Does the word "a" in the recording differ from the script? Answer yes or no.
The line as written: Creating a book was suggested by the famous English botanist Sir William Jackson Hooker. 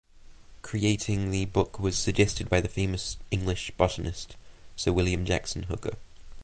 yes